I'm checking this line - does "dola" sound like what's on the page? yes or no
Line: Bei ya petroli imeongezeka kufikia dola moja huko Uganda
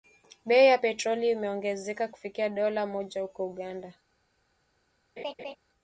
yes